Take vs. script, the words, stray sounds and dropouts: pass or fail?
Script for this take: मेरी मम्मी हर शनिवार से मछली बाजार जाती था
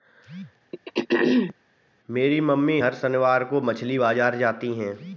fail